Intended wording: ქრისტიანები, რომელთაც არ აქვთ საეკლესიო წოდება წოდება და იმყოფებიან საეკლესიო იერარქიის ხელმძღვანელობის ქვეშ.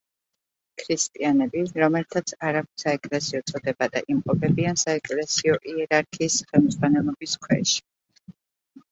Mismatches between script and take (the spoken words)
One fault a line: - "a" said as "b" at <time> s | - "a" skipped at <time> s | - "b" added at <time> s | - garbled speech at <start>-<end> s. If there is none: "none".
- "წოდება" skipped at 3.9 s